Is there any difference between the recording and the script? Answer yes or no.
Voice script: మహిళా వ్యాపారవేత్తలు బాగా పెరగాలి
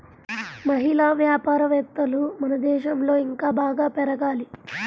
yes